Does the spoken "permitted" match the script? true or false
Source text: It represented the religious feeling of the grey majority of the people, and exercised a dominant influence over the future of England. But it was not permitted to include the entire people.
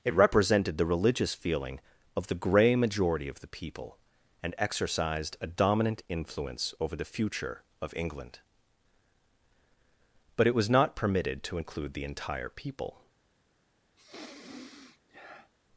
true